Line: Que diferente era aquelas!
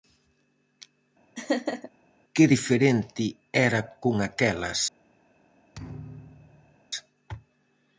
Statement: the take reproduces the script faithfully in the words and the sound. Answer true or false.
false